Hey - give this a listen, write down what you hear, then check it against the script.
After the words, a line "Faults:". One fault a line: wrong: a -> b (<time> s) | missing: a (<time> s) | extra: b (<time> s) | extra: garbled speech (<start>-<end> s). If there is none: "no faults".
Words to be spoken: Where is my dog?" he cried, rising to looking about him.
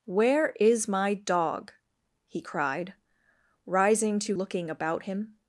Where is my dog?" he cried, rising to looking about him.
Faults:
no faults